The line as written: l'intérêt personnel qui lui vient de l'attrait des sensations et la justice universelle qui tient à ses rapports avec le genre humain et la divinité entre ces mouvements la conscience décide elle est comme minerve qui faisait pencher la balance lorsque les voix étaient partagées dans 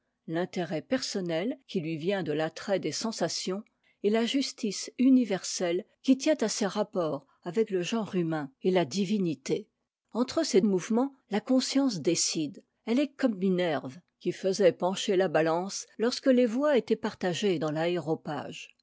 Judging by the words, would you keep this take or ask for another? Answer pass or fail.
pass